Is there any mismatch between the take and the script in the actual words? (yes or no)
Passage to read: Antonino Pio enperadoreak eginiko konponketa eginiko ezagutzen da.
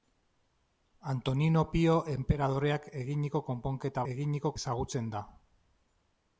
no